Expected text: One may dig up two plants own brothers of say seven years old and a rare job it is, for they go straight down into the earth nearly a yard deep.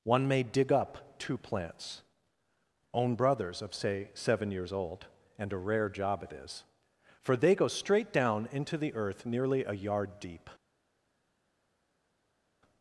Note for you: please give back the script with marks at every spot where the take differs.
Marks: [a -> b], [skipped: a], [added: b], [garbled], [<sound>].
One may dig up two plants own brothers of say seven years old and a rare job it is, for they go straight down into the earth nearly a yard deep.